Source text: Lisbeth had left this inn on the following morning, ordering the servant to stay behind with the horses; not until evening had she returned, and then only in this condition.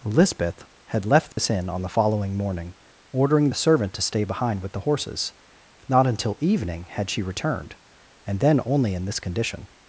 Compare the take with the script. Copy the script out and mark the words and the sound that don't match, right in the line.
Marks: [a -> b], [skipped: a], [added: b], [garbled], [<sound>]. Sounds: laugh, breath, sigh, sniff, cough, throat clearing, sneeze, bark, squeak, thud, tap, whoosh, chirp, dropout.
Lisbeth had left this [dropout] inn on the following morning, ordering the servant to stay behind with the horses; not until evening had she returned, and then only in this condition.